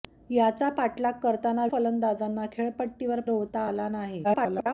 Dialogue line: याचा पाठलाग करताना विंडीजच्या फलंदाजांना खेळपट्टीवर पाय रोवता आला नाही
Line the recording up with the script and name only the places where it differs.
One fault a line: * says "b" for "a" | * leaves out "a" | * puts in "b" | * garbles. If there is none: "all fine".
* leaves out "विंडीजच्या"
* leaves out "पाय"
* garbles